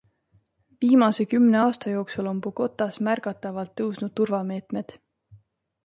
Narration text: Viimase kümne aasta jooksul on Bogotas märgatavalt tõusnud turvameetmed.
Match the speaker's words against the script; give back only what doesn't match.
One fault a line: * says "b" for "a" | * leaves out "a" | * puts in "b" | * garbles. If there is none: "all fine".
all fine